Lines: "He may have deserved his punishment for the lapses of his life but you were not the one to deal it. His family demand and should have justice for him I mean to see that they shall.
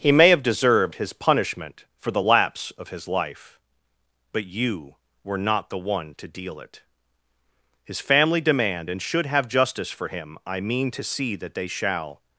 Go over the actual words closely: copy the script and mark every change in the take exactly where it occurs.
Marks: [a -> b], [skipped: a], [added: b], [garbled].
"He may have deserved his punishment for the [lapses -> lapse] of his life but you were not the one to deal it. His family demand and should have justice for him I mean to see that they shall.